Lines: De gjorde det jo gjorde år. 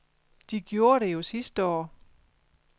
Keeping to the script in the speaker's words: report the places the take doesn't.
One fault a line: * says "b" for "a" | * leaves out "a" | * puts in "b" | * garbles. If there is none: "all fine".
* says "sidste" for "gjorde"